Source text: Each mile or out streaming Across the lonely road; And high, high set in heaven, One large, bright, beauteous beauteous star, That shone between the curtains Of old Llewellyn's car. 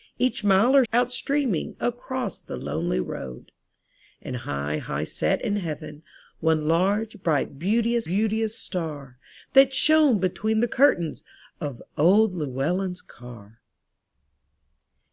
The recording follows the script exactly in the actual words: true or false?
true